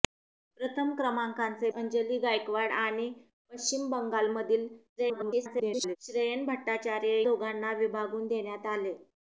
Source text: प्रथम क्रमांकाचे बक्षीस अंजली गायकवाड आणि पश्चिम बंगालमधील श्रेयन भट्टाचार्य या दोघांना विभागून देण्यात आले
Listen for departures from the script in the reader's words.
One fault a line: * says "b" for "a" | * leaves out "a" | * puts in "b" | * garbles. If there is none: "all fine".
* leaves out "बक्षीस"
* garbles
* leaves out "या"